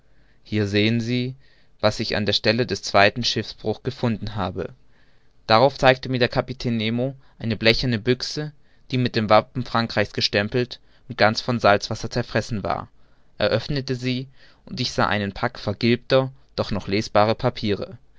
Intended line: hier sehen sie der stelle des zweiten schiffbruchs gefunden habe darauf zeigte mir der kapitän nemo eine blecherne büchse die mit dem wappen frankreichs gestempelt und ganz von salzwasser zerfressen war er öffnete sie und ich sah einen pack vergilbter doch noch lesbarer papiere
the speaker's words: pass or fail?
fail